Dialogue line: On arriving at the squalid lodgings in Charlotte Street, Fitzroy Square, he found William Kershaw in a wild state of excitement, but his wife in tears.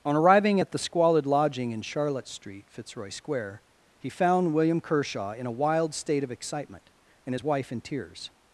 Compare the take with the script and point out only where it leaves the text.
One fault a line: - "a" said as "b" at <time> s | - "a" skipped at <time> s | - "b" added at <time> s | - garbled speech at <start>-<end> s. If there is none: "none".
- "lodgings" said as "lodging" at 1.3 s
- "but" said as "and" at 7.3 s